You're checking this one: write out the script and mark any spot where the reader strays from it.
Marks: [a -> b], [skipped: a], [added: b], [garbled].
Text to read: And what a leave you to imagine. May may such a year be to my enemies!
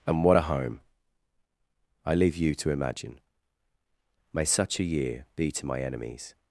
And what a [added: home I] leave you to imagine. May [skipped: may] such a year be to my enemies!